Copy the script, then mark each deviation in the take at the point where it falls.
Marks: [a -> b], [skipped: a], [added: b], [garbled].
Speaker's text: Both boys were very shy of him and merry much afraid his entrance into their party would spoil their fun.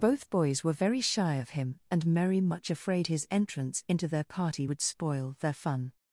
Both boys were very shy of him and merry much afraid his entrance into their party would spoil their fun.